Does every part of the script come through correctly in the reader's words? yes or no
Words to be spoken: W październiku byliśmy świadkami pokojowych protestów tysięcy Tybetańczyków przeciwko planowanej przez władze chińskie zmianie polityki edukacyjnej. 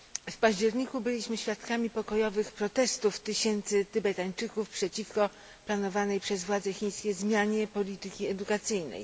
yes